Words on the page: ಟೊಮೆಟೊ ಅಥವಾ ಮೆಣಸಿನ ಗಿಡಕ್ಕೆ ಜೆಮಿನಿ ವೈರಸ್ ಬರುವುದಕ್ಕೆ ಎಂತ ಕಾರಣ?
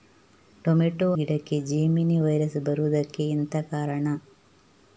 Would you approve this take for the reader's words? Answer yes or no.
no